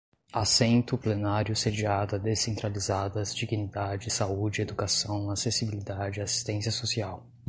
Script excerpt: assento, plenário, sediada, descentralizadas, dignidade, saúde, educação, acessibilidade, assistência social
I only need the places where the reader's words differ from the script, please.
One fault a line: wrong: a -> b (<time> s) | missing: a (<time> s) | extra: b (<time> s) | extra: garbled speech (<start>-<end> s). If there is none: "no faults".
no faults